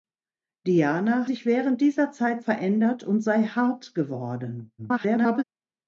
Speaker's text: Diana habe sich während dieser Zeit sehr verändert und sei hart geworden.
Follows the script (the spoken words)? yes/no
no